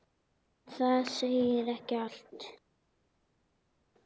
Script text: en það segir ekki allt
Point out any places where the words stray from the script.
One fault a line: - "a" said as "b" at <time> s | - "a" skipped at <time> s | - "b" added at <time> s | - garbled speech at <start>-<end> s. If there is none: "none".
none